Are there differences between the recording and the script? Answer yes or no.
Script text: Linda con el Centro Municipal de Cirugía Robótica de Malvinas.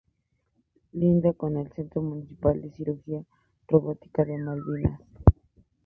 no